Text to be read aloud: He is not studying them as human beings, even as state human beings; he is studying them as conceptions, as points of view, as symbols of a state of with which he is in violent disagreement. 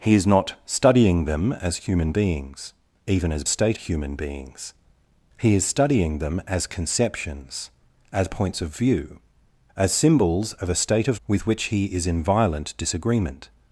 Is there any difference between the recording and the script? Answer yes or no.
no